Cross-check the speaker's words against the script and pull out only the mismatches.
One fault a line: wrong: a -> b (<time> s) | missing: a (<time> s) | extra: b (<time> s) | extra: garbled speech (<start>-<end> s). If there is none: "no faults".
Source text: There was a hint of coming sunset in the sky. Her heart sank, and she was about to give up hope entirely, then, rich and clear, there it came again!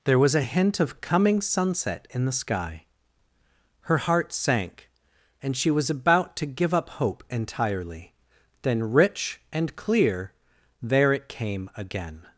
no faults